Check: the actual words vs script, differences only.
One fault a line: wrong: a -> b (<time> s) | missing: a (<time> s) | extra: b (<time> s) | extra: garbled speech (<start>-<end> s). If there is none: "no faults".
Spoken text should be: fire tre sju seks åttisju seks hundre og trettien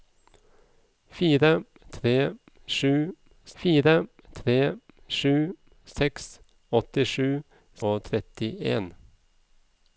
wrong: seks åttisju -> fire tre sju (3.6 s)
wrong: hundre -> åttisju (6.8 s)